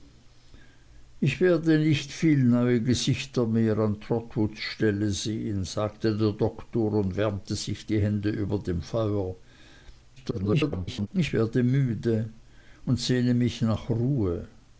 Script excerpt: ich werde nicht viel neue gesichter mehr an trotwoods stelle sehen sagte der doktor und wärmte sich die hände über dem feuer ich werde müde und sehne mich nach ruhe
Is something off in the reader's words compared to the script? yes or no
yes